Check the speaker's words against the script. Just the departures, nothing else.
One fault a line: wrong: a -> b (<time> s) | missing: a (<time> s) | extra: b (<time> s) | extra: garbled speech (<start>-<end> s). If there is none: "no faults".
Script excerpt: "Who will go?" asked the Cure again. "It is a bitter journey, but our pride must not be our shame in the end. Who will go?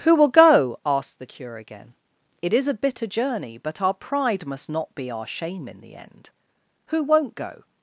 wrong: will -> won't (7.0 s)